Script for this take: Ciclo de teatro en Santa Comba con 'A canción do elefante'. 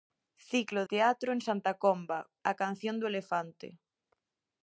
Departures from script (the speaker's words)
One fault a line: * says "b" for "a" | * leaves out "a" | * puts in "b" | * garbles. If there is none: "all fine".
* leaves out "de"
* leaves out "con"